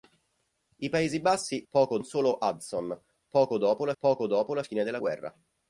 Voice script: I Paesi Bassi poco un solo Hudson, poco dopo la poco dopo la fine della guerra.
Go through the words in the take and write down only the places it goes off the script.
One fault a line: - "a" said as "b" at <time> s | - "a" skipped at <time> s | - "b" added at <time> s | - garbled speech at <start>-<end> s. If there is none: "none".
none